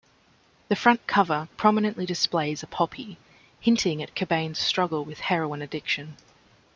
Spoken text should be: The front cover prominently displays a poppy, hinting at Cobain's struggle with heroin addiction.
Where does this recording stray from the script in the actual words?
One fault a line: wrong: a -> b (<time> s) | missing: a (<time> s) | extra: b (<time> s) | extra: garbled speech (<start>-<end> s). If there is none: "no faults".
no faults